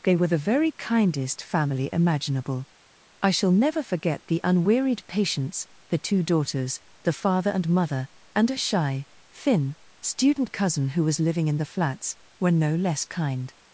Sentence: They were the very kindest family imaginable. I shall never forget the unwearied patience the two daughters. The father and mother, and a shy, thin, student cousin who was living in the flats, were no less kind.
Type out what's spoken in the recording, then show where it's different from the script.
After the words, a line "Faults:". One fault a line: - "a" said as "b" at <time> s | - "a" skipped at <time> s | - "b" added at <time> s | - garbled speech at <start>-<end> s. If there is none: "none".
They were the very kindest family imaginable. I shall never forget the unwearied patience the two daughters. The father and mother, and a shy, thin, student cousin who was living in the flats, were no less kind.
Faults:
none